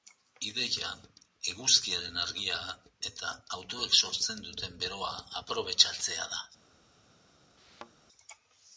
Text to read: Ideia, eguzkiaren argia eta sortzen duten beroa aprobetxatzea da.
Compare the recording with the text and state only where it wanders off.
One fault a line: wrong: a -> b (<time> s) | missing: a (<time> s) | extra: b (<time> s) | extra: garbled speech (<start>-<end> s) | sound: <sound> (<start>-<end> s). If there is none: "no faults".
extra: autoek (3.6 s)
sound: thud (7.6-7.9 s)